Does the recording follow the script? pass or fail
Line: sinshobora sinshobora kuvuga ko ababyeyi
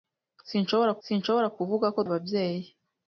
pass